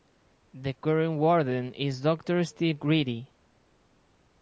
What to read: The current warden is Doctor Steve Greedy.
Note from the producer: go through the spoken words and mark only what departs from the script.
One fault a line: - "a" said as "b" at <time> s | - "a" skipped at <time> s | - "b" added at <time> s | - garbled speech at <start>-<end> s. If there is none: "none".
none